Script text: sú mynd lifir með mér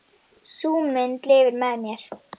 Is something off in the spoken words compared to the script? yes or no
no